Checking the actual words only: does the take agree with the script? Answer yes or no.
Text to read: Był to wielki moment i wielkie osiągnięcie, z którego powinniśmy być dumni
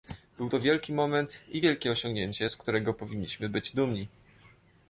yes